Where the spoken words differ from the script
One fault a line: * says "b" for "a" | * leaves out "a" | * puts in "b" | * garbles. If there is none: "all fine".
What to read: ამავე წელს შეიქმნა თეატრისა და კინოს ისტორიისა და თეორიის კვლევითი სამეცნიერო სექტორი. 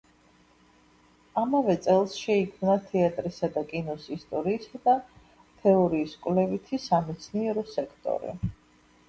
all fine